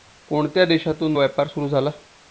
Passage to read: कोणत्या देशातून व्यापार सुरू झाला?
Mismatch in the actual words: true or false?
false